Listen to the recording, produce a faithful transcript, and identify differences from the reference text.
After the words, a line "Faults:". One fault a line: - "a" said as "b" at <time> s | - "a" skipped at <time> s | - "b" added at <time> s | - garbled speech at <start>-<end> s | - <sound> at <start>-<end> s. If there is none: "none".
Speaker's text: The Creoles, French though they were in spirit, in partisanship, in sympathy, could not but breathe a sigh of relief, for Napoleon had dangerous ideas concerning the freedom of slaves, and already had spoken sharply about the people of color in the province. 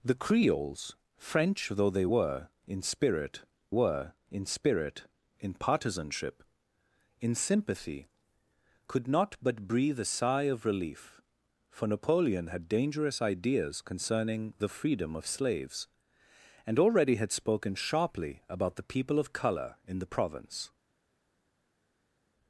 The Creoles, French though they were in spirit were in spirit, in partisanship, in sympathy, could not but breathe a sigh of relief, for Napoleon had dangerous ideas concerning the freedom of slaves, and already had spoken sharply about the people of color in the province.
Faults:
- "were in spirit" added at 3.7 s